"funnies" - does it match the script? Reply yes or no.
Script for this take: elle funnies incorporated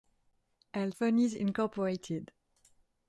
yes